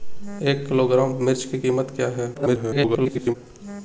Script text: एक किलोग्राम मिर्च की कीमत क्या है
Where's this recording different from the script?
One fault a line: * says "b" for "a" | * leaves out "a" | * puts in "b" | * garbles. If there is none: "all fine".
* garbles